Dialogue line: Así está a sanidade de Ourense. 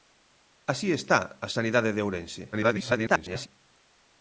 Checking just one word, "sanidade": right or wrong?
right